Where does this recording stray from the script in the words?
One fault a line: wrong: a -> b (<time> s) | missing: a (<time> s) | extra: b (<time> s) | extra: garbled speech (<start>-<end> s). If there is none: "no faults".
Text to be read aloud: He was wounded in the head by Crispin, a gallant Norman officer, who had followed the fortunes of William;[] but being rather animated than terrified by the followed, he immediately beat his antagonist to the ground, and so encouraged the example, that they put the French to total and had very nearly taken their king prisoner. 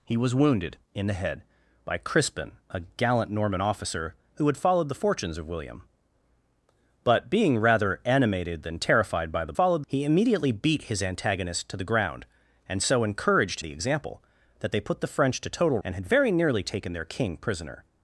no faults